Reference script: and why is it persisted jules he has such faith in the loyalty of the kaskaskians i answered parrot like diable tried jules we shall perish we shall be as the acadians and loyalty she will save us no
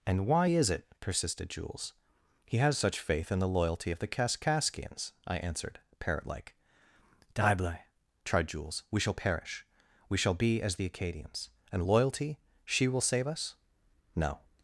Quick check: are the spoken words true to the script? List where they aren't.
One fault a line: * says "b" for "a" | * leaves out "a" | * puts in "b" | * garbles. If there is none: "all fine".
all fine